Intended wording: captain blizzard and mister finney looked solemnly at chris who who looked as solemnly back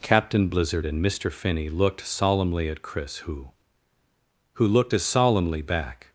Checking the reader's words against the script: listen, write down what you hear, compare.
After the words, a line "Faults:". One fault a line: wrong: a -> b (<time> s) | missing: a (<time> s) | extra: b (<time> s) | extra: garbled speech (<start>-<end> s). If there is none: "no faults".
captain blizzard and mister finney looked solemnly at chris who who looked as solemnly back
Faults:
no faults